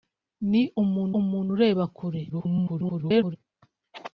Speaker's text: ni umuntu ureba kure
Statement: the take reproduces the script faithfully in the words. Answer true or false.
false